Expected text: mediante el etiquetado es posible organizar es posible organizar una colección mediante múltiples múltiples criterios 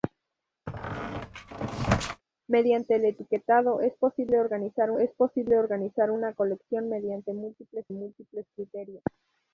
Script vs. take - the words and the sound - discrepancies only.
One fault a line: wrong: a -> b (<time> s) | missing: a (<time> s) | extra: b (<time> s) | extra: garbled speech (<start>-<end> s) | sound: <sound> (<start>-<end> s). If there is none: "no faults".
sound: squeak (0.7-2.2 s)